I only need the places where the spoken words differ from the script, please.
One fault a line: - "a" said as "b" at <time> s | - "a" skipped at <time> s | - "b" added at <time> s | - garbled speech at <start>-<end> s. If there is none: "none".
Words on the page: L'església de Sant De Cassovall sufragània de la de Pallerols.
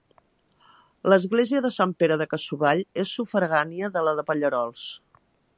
- "Pere" added at 2.0 s
- "és" added at 3.0 s